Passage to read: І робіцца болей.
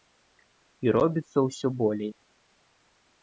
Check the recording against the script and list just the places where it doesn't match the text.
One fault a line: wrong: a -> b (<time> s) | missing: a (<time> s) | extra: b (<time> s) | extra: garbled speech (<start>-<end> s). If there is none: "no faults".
extra: ўсё (1.5 s)